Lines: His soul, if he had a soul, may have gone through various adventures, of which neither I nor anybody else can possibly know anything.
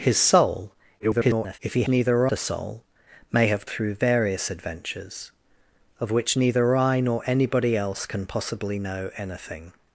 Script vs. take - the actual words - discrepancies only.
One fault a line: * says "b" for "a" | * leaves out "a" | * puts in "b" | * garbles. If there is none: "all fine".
* garbles
* says "neither" for "had"
* leaves out "gone"